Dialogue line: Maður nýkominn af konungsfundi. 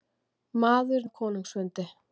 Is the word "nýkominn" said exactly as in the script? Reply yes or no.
no